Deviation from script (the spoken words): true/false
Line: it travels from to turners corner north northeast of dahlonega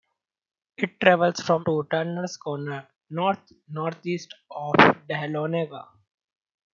false